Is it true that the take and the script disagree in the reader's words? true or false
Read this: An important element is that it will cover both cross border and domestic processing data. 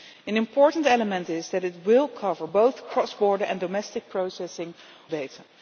false